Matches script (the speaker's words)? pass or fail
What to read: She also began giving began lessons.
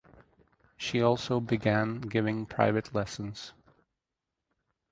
fail